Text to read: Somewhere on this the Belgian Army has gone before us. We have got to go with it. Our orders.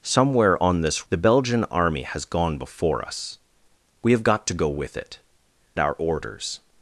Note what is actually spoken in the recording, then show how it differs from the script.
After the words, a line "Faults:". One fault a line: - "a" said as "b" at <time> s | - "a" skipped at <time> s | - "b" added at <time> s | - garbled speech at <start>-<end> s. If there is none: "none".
Somewhere on this the Belgian Army has gone before us. We have got to go with it. Our orders.
Faults:
none